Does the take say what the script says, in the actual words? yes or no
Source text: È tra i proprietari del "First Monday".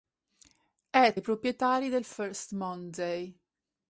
no